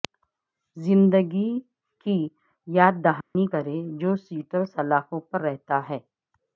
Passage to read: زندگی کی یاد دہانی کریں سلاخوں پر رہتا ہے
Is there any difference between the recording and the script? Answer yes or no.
yes